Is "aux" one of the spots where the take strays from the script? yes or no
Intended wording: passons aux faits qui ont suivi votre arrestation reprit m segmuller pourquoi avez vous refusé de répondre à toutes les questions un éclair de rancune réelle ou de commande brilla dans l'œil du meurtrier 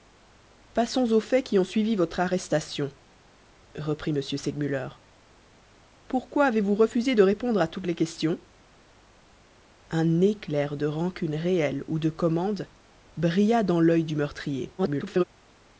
no